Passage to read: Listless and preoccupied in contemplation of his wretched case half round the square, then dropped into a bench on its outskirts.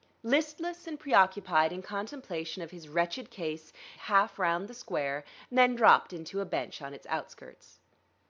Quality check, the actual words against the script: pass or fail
pass